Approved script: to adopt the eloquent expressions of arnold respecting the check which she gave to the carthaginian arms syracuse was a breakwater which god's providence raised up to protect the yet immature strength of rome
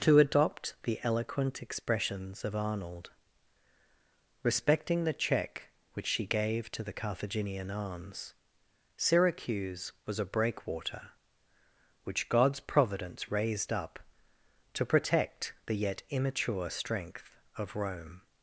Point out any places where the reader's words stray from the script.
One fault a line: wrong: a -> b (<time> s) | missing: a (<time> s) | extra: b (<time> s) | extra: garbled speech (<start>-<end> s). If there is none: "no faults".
no faults